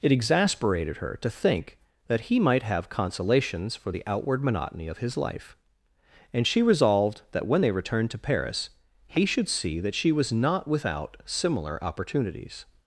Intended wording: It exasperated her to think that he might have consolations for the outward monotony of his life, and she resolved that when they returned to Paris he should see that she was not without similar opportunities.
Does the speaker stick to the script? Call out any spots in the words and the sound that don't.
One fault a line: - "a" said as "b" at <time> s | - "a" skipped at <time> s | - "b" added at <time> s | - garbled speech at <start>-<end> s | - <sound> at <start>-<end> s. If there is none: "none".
none